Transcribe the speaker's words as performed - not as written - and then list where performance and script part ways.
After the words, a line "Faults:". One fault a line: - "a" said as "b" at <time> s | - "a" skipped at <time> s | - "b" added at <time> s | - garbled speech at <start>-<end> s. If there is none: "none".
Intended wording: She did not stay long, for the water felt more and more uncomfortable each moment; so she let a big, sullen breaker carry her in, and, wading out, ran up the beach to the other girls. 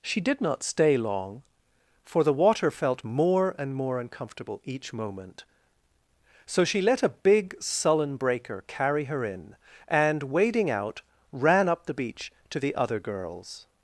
She did not stay long, for the water felt more and more uncomfortable each moment; so she let a big, sullen breaker carry her in, and, wading out, ran up the beach to the other girls.
Faults:
none